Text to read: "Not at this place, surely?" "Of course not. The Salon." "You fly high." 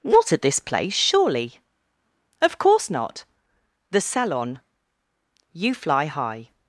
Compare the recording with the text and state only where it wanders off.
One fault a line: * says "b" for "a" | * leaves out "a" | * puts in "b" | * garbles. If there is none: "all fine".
all fine